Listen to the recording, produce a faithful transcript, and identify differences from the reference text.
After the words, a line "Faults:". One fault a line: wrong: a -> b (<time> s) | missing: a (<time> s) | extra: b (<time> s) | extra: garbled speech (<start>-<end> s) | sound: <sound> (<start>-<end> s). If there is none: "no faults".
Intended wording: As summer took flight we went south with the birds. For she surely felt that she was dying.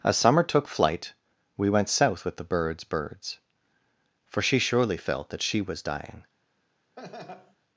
As summer took flight we went south with the birds birds. For she surely felt that she was dying.
Faults:
extra: birds (2.9 s)
sound: laugh (7.0-7.6 s)